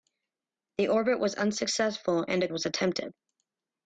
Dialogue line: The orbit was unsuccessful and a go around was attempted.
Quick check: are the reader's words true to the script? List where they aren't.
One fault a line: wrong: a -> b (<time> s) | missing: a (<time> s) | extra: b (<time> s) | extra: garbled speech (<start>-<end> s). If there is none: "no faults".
missing: go around (2.5 s)